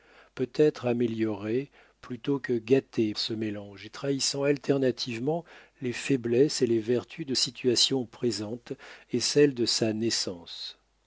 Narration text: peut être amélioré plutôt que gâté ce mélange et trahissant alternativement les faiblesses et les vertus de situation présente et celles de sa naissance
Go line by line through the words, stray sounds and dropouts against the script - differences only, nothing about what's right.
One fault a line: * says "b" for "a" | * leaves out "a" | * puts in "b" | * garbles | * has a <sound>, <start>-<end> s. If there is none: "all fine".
all fine